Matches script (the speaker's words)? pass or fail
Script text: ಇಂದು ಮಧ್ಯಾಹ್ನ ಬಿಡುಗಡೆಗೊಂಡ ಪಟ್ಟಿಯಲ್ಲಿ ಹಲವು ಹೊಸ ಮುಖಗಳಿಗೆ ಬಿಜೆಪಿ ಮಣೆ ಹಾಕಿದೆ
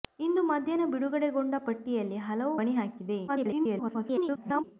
fail